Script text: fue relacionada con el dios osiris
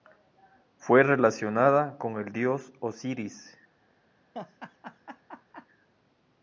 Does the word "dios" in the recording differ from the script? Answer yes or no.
no